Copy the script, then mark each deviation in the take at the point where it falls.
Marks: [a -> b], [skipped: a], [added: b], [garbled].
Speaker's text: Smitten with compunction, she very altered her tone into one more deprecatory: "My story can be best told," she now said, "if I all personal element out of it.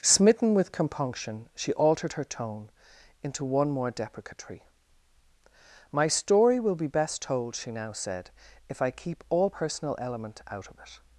Smitten with compunction, she [skipped: very] altered her tone into one more deprecatory: "My story [can -> will] be best told," she now said, "if I [added: keep] all personal element out of it.